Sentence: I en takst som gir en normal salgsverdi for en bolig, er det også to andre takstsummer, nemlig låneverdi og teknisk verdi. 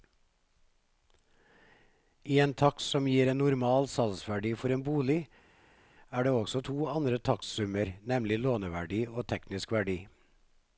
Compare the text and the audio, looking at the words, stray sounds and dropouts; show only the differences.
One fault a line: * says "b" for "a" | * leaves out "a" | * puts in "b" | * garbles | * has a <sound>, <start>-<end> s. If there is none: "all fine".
all fine